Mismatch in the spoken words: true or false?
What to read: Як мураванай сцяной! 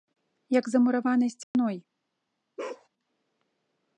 true